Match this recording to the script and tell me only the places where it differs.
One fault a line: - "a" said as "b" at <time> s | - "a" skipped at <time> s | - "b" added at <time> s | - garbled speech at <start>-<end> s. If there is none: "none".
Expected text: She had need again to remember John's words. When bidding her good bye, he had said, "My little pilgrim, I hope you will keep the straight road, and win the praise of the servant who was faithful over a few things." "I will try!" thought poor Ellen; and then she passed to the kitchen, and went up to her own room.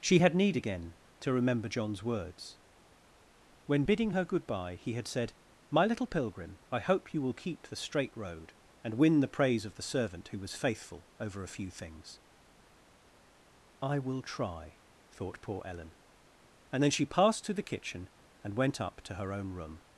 none